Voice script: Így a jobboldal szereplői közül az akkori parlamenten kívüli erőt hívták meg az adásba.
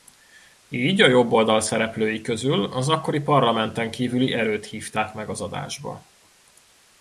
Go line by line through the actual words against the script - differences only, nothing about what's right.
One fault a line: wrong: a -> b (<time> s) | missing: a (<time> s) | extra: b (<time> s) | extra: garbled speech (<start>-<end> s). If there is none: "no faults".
no faults